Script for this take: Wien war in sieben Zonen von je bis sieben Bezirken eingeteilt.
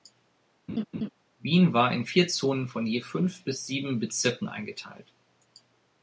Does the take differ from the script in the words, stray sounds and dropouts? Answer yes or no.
yes